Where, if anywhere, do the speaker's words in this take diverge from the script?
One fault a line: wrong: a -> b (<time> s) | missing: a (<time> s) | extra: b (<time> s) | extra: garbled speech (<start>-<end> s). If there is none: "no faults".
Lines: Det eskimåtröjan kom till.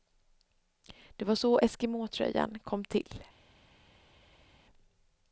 extra: var så (1.2 s)